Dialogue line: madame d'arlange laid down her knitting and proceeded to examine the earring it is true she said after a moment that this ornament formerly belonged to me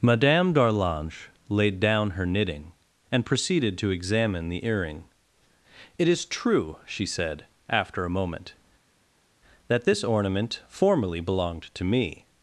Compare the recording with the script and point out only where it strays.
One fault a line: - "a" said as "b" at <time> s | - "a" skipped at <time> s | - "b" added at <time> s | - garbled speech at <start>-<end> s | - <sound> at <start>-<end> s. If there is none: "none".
none